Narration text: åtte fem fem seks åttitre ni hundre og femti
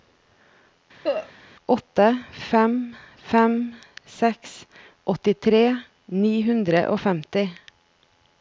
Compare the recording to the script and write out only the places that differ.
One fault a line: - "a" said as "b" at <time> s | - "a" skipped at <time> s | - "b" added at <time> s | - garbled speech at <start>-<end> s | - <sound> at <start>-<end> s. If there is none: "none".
- cough at 1.0-1.3 s